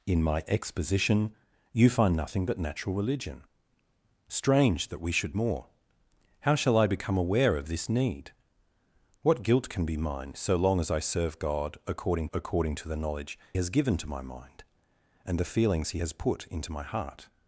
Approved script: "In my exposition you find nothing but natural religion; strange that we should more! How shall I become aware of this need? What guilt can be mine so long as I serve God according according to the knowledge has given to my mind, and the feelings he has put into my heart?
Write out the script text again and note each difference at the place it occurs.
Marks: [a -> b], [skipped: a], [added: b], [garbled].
"In my exposition you find nothing but natural religion; strange that we should more! How shall I become aware of this need? What guilt can be mine so long as I serve God according according to the knowledge has given to my mind, and the feelings he has put into my heart?